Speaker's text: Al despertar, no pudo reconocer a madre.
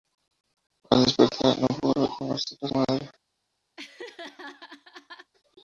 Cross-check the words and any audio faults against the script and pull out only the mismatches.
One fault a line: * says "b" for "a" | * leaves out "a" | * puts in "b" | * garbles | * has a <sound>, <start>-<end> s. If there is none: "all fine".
* has a laugh, 3.8-5.3 s